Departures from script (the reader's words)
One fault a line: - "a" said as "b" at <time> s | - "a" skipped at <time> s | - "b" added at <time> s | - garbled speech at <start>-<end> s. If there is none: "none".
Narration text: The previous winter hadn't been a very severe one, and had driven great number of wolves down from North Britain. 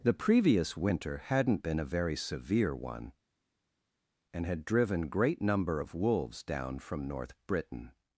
none